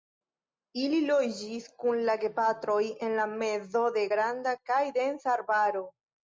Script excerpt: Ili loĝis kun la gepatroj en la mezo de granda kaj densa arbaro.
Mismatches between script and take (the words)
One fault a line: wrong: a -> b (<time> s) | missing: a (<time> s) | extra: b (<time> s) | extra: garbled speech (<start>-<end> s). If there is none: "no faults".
no faults